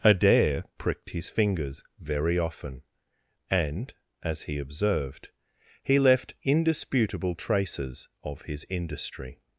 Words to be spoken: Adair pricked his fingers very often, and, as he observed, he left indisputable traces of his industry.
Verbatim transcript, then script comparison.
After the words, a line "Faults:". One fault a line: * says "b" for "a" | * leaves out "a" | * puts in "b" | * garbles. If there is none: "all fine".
Adair pricked his fingers very often, and, as he observed, he left indisputable traces of his industry.
Faults:
all fine